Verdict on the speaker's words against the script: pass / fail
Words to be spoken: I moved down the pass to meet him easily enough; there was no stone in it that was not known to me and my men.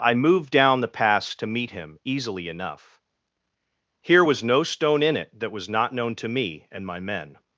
fail